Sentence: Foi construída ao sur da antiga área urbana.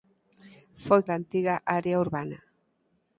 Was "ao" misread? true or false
true